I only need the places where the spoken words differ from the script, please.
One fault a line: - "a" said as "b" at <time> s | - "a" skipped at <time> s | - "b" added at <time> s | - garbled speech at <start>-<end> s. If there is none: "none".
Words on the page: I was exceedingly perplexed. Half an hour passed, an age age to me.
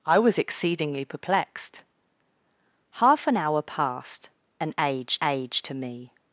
none